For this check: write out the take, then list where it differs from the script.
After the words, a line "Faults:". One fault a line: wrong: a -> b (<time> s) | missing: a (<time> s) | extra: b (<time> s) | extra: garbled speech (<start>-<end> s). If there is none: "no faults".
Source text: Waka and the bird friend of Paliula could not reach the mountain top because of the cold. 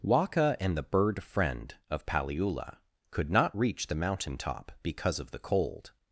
Waka and the bird friend of Paliula could not reach the mountain top because of the cold.
Faults:
no faults